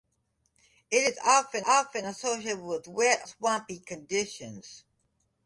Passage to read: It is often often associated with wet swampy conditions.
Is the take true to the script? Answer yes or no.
yes